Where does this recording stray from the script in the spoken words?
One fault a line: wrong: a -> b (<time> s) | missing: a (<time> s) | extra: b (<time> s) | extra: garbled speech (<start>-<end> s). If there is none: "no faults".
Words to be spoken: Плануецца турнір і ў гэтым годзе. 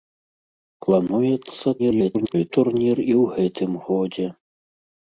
extra: garbled speech (1.8-2.5 s)